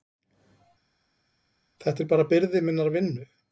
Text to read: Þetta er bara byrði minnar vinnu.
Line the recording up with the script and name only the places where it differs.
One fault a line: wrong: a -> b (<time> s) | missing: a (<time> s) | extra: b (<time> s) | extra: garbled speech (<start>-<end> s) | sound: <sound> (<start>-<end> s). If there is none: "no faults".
no faults